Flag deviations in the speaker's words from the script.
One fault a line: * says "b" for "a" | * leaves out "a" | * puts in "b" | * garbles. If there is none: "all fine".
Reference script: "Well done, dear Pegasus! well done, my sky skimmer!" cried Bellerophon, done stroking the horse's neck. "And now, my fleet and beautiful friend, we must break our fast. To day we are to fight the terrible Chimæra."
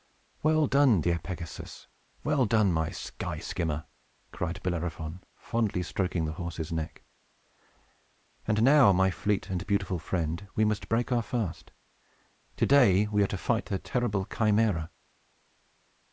* says "fondly" for "done"